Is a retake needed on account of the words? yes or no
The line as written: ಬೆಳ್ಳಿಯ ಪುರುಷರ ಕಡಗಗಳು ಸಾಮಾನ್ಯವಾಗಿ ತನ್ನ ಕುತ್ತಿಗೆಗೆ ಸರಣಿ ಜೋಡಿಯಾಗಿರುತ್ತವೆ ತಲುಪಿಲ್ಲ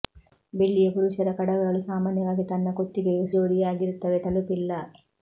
yes